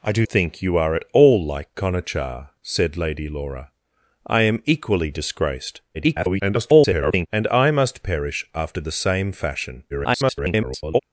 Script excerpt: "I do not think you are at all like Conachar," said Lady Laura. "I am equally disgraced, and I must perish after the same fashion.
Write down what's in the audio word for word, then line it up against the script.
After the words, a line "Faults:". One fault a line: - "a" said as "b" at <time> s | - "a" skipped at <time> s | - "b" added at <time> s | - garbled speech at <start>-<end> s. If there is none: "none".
"I do think you are at all like Conachar," said Lady Laura. "I am equally disgraced, [garbled] and I must perish after the same fashion. [garbled]
Faults:
- "not" skipped at 0.2 s
- garbled speech at 5.9-7.3 s
- garbled speech at 9.9-11.0 s